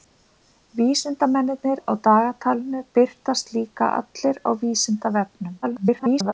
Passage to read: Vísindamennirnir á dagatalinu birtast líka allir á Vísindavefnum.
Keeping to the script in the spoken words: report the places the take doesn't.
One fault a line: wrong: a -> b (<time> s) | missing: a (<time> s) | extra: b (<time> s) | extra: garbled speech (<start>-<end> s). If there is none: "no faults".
extra: garbled speech (5.6-6.3 s)